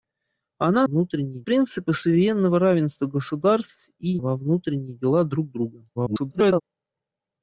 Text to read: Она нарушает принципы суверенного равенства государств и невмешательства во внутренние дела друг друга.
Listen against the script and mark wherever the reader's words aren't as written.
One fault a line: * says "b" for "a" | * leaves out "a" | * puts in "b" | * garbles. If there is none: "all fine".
* says "внутренние" for "нарушает"
* leaves out "невмешательства"
* garbles